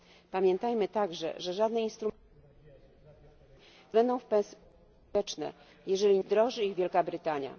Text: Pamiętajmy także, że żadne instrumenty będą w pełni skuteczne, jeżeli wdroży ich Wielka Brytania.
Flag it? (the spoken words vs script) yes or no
no